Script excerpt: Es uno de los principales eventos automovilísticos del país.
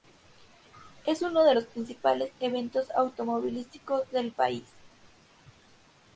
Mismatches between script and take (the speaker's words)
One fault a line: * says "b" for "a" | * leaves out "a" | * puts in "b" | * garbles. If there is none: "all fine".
all fine